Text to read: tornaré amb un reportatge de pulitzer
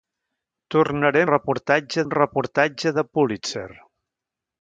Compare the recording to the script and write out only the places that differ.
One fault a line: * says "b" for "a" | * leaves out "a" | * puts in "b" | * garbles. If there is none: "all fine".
* says "reportatge" for "amb"